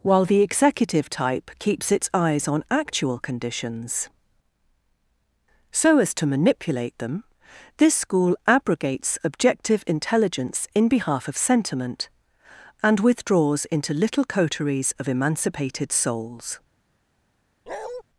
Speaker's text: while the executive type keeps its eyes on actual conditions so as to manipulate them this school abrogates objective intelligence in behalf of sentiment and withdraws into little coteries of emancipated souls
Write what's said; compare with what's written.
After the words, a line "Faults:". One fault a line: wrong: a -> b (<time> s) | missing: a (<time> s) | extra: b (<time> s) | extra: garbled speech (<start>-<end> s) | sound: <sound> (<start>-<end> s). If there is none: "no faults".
while the executive type keeps its eyes on actual conditions so as to manipulate them this school abrogates objective intelligence in behalf of sentiment and withdraws into little coteries of emancipated souls
Faults:
sound: bark (17.7-18.0 s)